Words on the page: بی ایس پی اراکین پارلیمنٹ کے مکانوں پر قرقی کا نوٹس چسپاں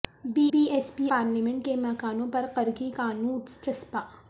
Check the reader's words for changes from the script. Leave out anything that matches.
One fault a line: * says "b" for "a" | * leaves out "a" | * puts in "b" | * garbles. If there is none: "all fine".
* puts in "بی"
* leaves out "اراکین"